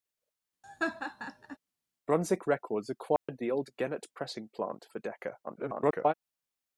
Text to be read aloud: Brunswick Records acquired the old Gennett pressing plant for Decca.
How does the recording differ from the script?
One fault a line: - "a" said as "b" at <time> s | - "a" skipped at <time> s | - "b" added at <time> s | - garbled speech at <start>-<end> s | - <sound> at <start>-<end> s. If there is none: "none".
- laugh at 0.6-1.6 s
- dropout at 3.2-3.3 s
- garbled speech at 5.4-6.1 s